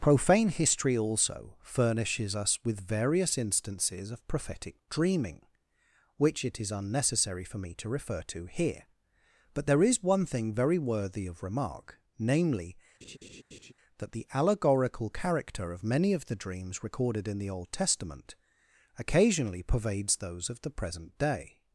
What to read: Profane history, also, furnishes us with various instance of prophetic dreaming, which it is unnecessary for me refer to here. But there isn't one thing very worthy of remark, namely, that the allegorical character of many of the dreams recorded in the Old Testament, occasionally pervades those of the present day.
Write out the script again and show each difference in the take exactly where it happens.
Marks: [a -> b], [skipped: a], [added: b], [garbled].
Profane history, also, furnishes us with various [instance -> instances] of prophetic dreaming, which it is unnecessary for me [added: to] refer to here. But there [isn't -> is] one thing very worthy of remark, namely, that the allegorical character of many of the dreams recorded in the Old Testament, occasionally pervades those of the present day.